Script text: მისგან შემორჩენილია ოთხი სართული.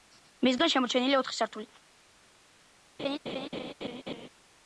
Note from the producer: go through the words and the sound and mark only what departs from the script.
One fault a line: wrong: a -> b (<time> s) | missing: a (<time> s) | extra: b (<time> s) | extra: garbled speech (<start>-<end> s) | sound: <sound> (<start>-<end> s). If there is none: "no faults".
sound: laugh (3.0-4.3 s)